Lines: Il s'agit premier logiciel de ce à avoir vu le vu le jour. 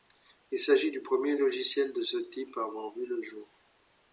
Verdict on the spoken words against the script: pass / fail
fail